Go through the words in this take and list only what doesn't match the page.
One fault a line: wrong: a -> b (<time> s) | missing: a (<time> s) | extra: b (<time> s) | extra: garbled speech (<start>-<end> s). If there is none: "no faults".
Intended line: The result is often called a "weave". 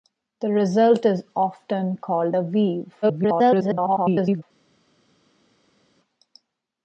extra: garbled speech (3.0-4.4 s)